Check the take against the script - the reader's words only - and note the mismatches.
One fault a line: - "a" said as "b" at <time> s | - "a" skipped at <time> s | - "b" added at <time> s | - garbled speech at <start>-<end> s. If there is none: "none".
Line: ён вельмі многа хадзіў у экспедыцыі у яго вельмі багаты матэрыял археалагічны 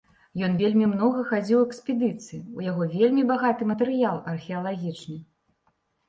none